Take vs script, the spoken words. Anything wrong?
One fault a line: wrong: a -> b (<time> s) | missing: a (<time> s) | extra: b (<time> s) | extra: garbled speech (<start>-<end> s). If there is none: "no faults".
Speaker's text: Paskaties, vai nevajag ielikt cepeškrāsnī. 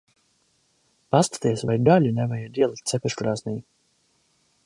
extra: gaļu (1.9 s)